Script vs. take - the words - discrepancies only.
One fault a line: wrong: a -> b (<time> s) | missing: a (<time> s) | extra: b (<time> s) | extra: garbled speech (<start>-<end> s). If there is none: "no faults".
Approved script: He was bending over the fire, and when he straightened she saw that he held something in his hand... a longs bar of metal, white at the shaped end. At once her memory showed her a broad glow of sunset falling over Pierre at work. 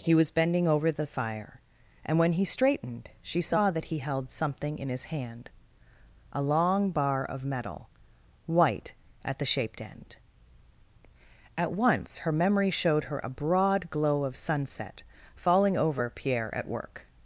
wrong: longs -> long (6.4 s)